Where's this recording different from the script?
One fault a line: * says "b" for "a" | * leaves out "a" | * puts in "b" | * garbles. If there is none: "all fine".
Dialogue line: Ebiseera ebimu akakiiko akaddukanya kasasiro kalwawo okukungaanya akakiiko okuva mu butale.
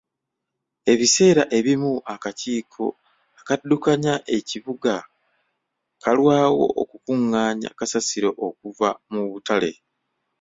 * says "ekibuga" for "kasasiro"
* says "kasasiro" for "akakiiko"